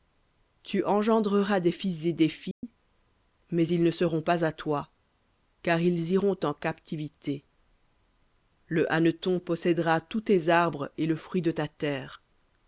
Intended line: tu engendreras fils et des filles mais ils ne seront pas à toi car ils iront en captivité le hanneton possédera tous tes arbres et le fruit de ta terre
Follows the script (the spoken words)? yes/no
no